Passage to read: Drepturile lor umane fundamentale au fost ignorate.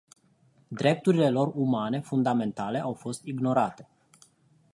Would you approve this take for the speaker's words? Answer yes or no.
yes